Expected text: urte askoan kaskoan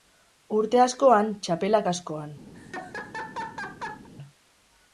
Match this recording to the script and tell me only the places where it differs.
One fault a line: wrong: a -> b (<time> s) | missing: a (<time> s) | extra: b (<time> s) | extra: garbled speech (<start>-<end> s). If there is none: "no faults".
extra: txapela (1.5 s)